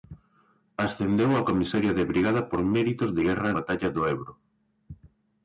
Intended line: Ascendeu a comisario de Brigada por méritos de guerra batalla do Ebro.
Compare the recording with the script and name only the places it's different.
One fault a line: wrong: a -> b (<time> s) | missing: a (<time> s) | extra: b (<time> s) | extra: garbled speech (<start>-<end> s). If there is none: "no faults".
no faults